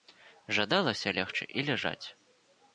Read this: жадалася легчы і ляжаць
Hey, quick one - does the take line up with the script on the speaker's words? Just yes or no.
yes